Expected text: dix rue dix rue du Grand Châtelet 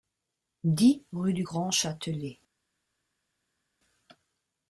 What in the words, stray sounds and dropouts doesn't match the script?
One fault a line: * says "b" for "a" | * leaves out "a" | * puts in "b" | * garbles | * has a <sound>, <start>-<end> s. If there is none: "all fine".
* leaves out "dix rue"